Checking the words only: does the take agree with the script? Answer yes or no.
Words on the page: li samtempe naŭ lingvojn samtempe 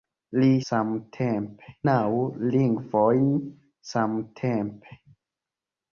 yes